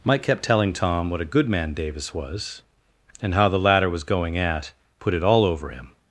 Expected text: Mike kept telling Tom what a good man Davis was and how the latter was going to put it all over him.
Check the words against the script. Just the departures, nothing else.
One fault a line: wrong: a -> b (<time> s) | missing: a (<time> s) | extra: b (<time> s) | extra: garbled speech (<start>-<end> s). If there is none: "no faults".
wrong: to -> at (4.4 s)